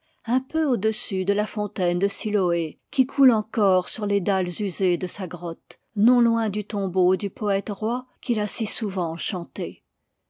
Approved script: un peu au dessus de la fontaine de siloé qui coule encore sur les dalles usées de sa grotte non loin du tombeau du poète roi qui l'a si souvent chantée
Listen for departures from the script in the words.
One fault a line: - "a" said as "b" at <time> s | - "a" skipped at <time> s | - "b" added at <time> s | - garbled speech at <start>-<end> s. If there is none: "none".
none